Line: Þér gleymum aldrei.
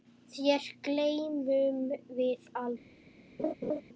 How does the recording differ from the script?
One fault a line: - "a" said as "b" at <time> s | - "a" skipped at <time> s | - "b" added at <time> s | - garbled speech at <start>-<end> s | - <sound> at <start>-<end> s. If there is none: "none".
- "við" added at 2.2 s
- laugh at 3.4-3.8 s